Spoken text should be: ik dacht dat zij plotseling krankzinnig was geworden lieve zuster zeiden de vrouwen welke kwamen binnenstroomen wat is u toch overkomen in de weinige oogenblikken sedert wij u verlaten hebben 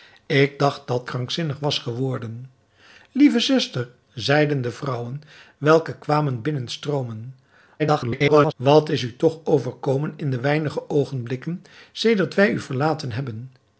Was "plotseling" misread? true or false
true